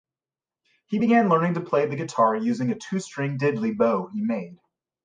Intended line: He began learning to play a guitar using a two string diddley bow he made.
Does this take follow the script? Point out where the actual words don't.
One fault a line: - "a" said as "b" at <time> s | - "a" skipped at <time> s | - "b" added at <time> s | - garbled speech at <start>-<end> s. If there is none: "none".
- "a" said as "the" at 1.9 s